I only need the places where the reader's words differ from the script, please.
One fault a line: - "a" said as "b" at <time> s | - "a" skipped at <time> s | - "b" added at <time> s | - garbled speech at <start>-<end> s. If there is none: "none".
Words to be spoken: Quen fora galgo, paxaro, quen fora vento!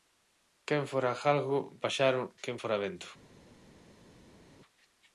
none